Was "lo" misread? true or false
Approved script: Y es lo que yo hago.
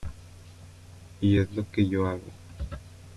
false